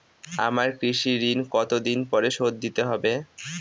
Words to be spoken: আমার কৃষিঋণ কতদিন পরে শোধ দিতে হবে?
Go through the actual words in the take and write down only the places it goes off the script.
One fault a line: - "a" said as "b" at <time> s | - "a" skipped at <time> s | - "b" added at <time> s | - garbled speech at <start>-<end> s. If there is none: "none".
none